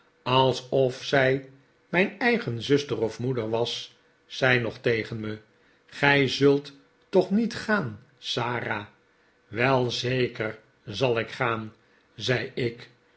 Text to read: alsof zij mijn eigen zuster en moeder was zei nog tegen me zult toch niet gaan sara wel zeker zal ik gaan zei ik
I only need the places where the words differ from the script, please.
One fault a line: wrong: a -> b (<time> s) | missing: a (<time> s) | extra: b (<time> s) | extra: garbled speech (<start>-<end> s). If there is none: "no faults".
wrong: en -> of (3.0 s)
extra: gij (5.9 s)